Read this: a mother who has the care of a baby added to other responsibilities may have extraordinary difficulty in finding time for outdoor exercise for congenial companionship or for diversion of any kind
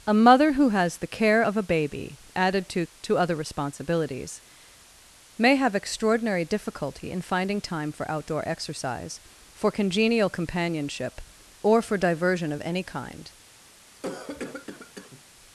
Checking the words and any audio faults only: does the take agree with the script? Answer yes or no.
no